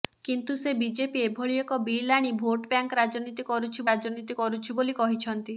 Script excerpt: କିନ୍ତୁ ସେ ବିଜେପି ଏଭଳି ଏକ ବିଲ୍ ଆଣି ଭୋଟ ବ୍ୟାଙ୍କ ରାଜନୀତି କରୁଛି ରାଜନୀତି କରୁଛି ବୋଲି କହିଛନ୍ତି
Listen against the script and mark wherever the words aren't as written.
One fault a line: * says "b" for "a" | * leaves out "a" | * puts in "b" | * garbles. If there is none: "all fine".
all fine